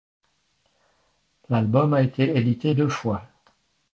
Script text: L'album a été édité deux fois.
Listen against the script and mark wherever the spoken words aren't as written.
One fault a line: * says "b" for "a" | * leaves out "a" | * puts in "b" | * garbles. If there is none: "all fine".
all fine